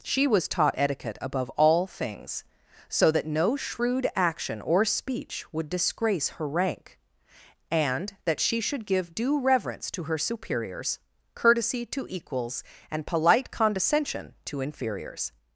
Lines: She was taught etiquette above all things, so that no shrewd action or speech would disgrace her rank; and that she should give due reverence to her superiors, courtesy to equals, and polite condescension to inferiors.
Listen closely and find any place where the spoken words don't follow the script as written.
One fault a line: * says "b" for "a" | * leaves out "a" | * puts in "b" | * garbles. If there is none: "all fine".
all fine